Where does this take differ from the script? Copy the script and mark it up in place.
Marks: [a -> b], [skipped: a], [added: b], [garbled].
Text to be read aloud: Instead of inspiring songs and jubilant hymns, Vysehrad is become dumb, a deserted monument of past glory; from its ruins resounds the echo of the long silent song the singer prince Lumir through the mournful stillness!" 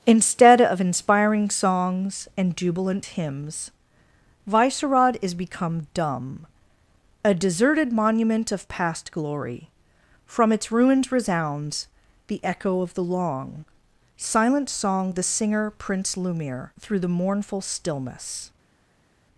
Instead of inspiring songs and jubilant hymns, Vysehrad is become dumb, a deserted monument of past glory; from its ruins resounds the echo of the long silent song the singer prince Lumir through the mournful stillness!"